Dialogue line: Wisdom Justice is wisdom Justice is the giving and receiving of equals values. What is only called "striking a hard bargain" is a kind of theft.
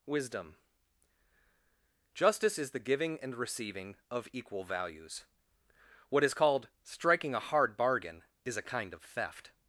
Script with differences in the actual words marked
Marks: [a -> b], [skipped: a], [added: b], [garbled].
Wisdom Justice is [skipped: wisdom Justice is] the giving and receiving of [equals -> equal] values. What is [skipped: only] called "striking a hard bargain" is a kind of theft.